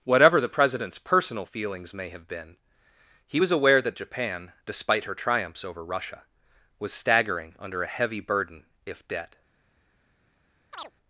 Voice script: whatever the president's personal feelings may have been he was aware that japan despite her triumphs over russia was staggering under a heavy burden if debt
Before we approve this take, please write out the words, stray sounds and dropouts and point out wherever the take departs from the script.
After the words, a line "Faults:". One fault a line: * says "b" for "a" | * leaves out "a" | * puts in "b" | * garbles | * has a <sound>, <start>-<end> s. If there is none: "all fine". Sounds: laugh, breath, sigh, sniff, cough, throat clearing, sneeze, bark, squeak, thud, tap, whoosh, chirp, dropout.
whatever the president's personal feelings may have been he was aware that japan despite her triumphs over russia was staggering under a heavy burden if debt
Faults:
* has a chirp, 10.7-10.9 s